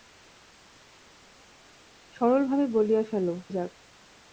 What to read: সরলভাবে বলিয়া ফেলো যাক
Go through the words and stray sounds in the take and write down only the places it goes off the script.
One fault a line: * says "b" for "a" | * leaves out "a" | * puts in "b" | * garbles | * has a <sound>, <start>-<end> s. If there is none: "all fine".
all fine